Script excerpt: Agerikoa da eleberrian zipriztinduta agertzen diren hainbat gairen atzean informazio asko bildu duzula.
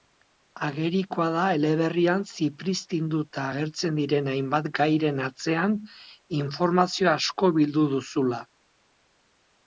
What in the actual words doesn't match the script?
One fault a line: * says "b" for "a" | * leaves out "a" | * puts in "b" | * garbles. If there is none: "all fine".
all fine